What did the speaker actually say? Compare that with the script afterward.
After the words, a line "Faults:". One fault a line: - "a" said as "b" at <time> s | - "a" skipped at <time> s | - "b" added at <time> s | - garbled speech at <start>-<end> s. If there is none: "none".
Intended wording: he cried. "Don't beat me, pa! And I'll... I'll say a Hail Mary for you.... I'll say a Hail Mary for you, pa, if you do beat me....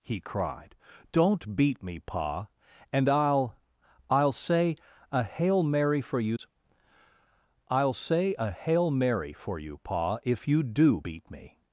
he cried. "Don't beat me, pa! And I'll... I'll say a Hail Mary for you.... I'll say a Hail Mary for you, pa, if you do beat me....
Faults:
none